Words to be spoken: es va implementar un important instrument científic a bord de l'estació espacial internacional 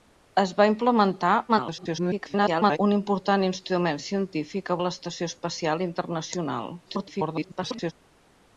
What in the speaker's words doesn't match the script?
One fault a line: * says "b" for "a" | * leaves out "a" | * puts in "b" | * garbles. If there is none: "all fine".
* garbles
* leaves out "bord"
* garbles